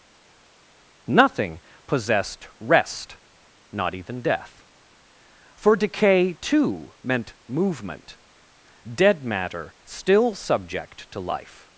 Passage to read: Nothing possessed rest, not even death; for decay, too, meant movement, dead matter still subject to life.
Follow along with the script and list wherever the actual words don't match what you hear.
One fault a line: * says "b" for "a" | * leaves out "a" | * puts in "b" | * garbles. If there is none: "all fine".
all fine